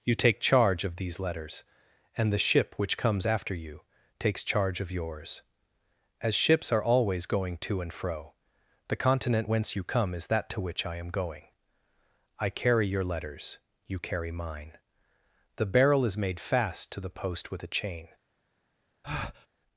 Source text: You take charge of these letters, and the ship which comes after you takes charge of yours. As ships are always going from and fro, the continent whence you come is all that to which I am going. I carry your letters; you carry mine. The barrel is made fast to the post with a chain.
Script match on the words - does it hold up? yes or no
no